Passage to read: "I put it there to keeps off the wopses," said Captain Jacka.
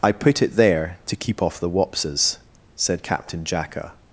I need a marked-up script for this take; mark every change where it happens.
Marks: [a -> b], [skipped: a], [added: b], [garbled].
"I put it there to [keeps -> keep] off the wopses," said Captain Jacka.